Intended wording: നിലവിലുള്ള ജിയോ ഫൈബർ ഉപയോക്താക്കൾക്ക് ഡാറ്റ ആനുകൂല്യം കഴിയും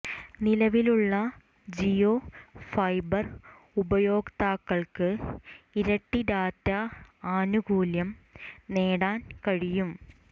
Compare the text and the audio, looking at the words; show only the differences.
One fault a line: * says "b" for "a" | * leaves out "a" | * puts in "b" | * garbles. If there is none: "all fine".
* puts in "ഇരട്ടി"
* puts in "നേടാൻ"